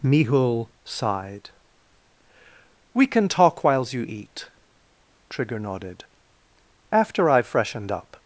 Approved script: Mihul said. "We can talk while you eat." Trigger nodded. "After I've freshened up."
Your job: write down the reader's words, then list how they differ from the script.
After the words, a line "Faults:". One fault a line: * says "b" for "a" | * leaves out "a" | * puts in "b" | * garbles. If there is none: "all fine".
Mihul sighed. "We can talk whiles you eat." Trigger nodded. "After I've freshened up."
Faults:
* says "sighed" for "said"
* says "whiles" for "while"